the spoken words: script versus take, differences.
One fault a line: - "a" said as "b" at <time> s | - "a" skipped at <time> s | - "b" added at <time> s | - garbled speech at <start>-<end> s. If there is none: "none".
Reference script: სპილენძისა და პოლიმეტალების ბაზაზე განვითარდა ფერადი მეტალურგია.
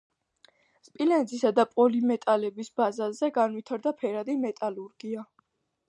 none